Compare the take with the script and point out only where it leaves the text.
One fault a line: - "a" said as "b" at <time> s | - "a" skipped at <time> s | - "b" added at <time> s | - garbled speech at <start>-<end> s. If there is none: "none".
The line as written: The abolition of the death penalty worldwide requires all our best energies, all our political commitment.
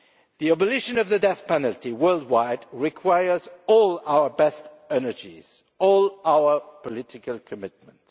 none